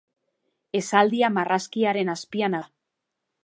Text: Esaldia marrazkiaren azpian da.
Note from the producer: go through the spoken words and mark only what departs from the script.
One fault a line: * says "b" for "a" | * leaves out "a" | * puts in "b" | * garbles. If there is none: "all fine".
all fine